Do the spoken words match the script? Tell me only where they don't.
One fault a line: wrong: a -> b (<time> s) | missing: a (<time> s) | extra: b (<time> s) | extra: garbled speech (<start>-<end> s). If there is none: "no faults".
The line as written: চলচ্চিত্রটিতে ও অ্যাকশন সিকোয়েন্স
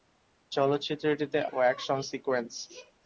no faults